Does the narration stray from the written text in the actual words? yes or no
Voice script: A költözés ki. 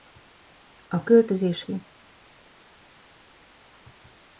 no